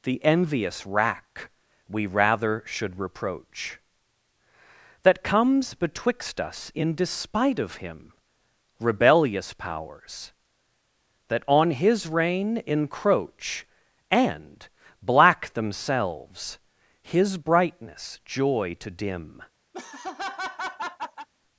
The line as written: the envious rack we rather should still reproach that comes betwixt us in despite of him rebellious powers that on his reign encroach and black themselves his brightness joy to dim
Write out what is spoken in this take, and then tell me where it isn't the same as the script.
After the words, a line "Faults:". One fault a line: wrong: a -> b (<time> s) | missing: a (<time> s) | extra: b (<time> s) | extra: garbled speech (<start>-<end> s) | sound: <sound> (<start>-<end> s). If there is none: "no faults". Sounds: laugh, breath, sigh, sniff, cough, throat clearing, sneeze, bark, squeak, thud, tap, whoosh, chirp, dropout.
the envious rack we rather should reproach that comes betwixt us in despite of him rebellious powers that on his reign encroach and black themselves his brightness joy to dim
Faults:
missing: still (3.0 s)
sound: laugh (19.7-21.3 s)